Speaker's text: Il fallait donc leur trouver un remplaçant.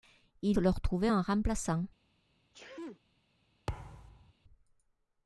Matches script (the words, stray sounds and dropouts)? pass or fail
fail